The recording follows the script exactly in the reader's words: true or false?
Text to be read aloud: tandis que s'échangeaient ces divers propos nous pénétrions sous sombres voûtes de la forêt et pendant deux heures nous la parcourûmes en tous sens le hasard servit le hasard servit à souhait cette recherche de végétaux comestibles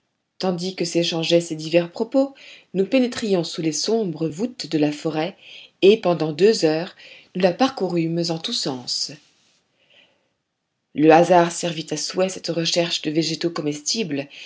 false